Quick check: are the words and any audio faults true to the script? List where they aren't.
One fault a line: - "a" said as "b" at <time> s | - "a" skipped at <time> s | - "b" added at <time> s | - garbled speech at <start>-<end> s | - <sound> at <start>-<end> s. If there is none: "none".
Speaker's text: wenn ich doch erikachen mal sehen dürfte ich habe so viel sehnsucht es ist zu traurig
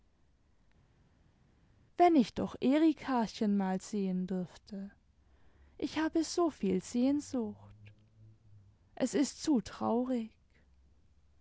none